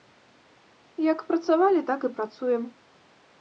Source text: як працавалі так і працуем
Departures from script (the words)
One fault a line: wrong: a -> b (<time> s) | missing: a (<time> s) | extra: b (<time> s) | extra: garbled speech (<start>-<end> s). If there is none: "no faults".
no faults